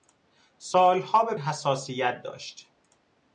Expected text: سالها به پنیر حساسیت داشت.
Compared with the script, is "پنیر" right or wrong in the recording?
wrong